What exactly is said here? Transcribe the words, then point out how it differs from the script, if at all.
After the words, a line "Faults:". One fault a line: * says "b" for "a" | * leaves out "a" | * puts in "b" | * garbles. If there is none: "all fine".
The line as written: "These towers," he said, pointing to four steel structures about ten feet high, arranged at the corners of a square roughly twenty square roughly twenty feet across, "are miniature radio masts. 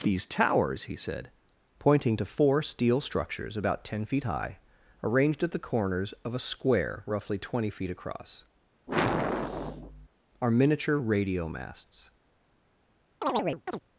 "These towers," he said, pointing to four steel structures about ten feet high, arranged at the corners of a square roughly twenty feet across, "are miniature radio masts.
Faults:
* leaves out "square roughly twenty"